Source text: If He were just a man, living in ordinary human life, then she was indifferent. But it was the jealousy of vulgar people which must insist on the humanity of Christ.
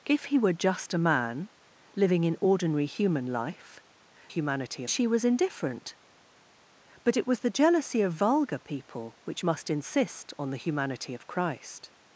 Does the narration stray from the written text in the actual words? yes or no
yes